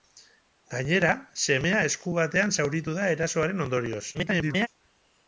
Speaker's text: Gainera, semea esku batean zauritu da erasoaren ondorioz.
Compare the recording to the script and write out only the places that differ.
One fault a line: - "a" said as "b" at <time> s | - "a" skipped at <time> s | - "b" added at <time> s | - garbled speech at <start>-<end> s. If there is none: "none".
- garbled speech at 4.1-4.7 s